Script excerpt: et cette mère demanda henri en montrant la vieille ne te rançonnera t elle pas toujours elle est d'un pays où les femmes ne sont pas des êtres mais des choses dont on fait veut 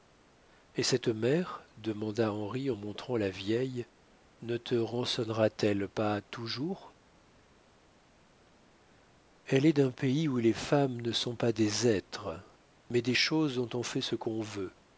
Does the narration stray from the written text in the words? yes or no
yes